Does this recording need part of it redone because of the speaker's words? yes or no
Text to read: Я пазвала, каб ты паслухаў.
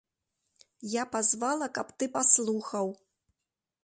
no